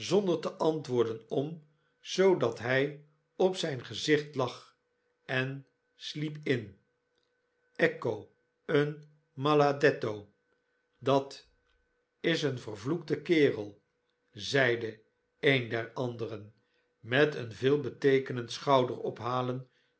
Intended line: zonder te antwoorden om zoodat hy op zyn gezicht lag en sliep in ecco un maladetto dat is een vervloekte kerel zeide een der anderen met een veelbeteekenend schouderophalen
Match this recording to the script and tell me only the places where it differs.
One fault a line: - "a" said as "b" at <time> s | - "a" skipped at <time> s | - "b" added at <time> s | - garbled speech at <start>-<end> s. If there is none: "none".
none